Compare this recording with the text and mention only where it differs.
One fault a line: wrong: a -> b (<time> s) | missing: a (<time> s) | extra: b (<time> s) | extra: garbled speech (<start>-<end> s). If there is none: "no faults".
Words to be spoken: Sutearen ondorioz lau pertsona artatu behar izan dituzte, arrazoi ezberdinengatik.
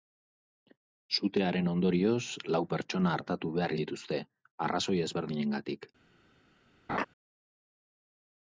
missing: izan (3.8 s)